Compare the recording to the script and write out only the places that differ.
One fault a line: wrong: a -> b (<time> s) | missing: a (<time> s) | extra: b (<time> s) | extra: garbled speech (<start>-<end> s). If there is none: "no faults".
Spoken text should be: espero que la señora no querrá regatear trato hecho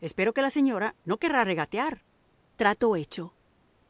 no faults